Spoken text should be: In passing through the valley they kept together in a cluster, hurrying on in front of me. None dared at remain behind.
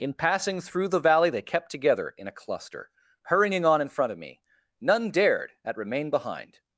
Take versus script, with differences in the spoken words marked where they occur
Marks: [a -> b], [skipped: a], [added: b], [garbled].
In passing through the valley they kept together in a cluster, hurrying on in front of me. None dared at remain behind.